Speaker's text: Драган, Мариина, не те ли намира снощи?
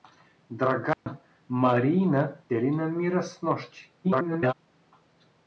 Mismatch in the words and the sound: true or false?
true